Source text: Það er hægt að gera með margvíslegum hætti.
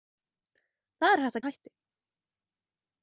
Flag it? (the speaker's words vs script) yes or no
yes